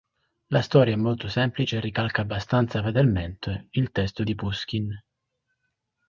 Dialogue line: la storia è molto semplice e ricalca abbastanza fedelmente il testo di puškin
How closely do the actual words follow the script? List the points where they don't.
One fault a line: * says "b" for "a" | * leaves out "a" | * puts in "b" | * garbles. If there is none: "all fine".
all fine